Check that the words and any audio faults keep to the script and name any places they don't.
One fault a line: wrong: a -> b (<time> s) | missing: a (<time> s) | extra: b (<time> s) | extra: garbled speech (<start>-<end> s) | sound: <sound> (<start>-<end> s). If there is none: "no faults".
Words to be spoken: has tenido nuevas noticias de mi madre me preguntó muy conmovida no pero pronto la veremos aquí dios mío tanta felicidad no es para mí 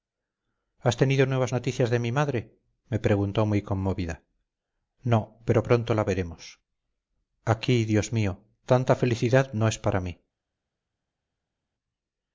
no faults